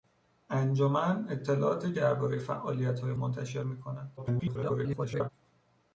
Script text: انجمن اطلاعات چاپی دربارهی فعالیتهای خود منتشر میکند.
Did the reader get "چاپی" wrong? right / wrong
wrong